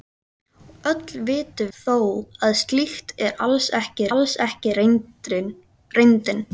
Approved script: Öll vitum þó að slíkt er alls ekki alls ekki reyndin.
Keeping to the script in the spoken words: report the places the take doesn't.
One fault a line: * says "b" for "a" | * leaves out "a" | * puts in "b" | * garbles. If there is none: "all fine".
all fine